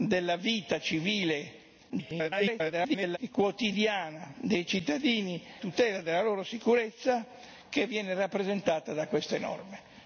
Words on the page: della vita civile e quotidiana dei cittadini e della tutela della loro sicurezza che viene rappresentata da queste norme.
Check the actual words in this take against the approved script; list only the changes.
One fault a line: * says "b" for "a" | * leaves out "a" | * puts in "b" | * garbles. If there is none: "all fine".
* garbles
* leaves out "e della"